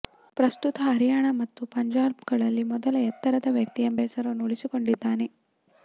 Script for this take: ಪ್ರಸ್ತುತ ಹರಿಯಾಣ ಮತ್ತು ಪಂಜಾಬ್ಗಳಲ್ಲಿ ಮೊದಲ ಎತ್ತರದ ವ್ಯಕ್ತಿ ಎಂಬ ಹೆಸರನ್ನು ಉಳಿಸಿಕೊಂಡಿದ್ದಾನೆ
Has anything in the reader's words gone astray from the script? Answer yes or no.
no